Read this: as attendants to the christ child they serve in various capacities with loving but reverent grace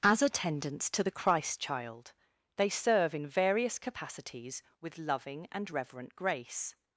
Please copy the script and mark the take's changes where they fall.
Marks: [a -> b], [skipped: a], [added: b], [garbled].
as attendants to the christ child they serve in various capacities with loving [but -> and] reverent grace